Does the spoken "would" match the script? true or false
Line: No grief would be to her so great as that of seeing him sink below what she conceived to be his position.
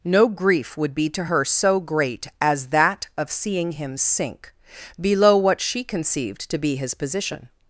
true